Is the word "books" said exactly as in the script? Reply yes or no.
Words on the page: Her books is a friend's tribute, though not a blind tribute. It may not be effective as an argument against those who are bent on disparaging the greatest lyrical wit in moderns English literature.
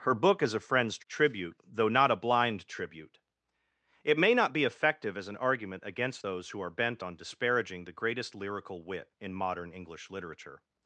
no